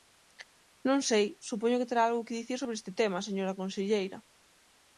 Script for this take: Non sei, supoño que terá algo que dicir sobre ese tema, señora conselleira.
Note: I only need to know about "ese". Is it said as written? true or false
false